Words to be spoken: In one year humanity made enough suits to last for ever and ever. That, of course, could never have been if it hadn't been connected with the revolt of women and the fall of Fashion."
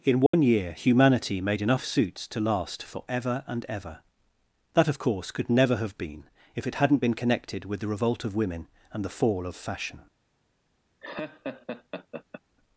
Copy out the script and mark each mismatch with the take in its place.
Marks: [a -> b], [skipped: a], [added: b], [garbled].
In one year humanity made enough suits to last for ever and ever. That, of course, could never have been if it hadn't been connected with the revolt of women and the fall of Fashion."